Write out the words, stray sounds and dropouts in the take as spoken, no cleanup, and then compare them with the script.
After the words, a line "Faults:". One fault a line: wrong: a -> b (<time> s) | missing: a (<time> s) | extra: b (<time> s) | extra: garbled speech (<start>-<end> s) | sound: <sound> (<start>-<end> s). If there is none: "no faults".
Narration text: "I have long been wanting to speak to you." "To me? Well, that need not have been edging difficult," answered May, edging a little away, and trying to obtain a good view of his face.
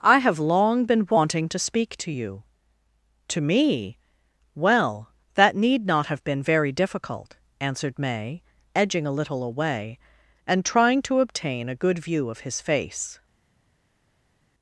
"I have long been wanting to speak to you." "To me? Well, that need not have been very difficult," answered May, edging a little away, and trying to obtain a good view of his face.
Faults:
wrong: edging -> very (6.4 s)